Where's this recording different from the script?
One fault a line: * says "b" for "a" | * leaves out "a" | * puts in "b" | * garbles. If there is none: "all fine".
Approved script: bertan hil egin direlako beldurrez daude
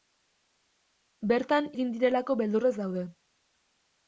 * leaves out "hil"